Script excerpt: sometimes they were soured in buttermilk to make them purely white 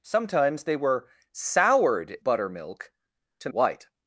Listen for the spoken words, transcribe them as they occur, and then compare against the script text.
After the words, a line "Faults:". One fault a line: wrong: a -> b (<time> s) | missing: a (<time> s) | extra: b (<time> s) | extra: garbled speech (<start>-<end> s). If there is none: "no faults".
sometimes they were soured buttermilk to white
Faults:
missing: in (2.2 s)
missing: make them purely (3.5 s)